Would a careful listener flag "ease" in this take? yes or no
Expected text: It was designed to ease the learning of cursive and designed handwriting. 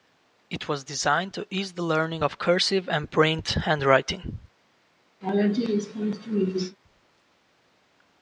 no